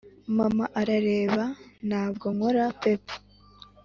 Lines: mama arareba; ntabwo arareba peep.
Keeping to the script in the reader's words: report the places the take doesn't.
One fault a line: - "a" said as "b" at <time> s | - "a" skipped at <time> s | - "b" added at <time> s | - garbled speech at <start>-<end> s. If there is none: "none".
- "arareba" said as "nkora" at 2.3 s